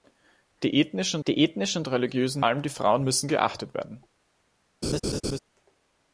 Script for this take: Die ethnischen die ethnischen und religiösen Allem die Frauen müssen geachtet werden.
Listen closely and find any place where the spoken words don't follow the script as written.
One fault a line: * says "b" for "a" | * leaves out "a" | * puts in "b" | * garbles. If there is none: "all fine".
all fine